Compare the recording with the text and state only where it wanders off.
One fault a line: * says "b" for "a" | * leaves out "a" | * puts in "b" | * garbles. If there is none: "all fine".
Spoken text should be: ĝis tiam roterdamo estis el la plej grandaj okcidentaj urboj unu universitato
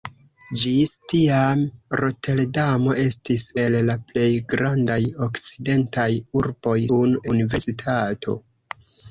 all fine